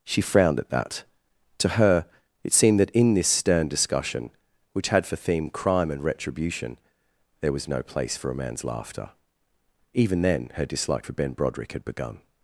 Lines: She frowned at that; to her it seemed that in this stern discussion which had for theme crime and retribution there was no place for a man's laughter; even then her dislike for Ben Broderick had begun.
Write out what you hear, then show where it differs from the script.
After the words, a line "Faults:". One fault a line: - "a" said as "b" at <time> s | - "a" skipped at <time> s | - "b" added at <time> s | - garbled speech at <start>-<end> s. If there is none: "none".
She frowned at that; to her it seemed that in this stern discussion which had for theme crime and retribution there was no place for a man's laughter; even then her dislike for Ben Broderick had begun.
Faults:
none